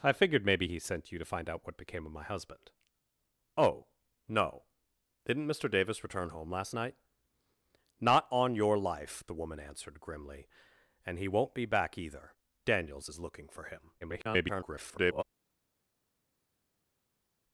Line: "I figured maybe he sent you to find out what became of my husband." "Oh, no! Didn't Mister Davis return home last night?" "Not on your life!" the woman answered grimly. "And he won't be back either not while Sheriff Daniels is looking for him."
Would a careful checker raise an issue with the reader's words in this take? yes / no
yes